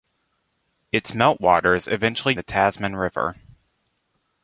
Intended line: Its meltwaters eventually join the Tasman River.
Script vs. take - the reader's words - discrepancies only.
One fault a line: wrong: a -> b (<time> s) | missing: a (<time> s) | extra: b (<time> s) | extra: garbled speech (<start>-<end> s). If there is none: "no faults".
missing: join (2.3 s)